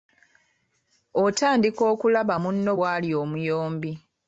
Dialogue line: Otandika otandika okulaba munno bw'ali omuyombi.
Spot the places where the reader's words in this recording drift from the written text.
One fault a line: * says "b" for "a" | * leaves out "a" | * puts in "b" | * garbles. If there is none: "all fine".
* leaves out "otandika"